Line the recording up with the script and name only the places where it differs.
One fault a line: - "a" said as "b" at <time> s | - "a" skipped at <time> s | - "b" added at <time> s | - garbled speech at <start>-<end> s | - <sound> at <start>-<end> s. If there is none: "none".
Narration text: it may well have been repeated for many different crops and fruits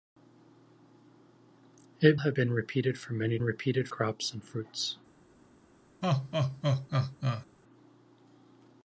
- "may well" skipped at 2.2 s
- "different" said as "repeated" at 3.4 s
- laugh at 6.0-7.5 s